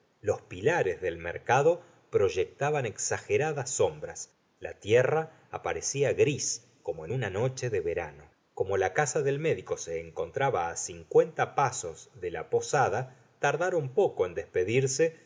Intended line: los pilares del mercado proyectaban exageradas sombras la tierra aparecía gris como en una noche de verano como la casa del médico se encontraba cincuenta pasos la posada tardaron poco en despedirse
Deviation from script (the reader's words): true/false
true